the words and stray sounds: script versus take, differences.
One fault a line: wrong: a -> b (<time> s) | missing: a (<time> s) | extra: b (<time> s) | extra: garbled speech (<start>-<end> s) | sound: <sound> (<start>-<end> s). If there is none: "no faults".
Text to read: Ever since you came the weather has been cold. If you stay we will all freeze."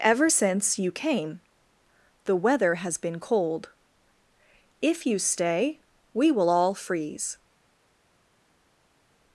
no faults